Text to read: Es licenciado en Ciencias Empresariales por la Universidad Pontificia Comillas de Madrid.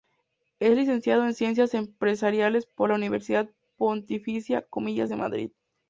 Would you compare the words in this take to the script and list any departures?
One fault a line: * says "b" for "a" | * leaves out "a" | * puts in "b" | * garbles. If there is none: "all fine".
all fine